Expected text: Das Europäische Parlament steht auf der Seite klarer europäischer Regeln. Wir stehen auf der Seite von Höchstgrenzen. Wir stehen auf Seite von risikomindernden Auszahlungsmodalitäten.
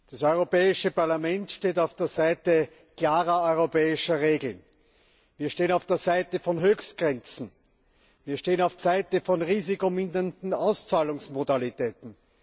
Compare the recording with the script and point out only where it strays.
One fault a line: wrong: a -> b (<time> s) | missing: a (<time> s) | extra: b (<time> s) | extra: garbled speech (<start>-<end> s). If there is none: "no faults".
no faults